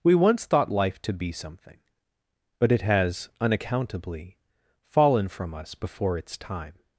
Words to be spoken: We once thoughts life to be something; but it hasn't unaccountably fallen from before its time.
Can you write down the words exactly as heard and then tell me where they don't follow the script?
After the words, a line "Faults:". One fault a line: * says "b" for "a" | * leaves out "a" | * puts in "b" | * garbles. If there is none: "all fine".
We once thought life to be something; but it has unaccountably fallen from us before its time.
Faults:
* says "thought" for "thoughts"
* says "has" for "hasn't"
* puts in "us"